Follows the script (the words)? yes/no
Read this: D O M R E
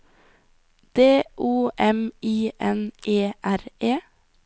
no